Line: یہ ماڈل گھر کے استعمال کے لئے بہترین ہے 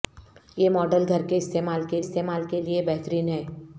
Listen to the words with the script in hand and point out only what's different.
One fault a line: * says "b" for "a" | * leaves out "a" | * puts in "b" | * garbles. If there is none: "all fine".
* puts in "استعمال کے"